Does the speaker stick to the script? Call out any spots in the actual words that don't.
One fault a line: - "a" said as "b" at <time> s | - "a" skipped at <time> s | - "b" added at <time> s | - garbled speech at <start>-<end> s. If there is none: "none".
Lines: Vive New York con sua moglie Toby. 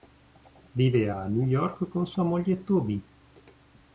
- "a" added at 1.1 s